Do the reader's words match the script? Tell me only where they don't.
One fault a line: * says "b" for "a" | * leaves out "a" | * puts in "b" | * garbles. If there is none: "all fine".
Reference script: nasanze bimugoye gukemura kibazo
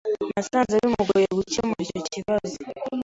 * puts in "icyo"